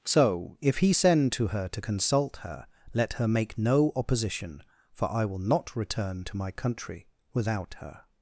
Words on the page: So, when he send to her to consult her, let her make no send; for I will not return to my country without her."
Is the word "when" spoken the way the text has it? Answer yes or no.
no